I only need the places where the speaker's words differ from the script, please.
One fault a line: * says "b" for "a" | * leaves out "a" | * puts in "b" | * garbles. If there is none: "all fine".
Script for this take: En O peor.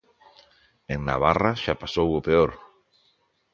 * puts in "Navarra xa pasou"